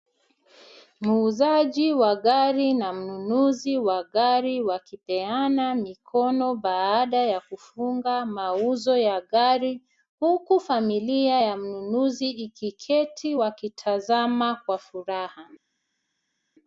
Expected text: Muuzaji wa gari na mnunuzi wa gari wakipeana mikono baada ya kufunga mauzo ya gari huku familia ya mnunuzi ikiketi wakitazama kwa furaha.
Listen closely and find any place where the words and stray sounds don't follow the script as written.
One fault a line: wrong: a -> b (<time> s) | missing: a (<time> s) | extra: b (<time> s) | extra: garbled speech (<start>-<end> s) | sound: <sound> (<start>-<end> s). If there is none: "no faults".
no faults